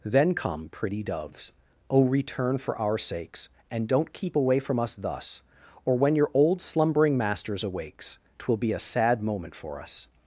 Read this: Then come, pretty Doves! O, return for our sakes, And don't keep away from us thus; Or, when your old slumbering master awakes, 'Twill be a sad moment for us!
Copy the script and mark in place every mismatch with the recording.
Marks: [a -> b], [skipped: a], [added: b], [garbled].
Then come, pretty Doves! O, return for our sakes, And don't keep away from us thus; Or, when your old slumbering [master -> masters] awakes, 'Twill be a sad moment for us!